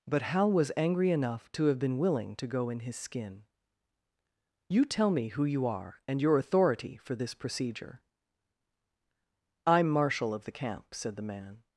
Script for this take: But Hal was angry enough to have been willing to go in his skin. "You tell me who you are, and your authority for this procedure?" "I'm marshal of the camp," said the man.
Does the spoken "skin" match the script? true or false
true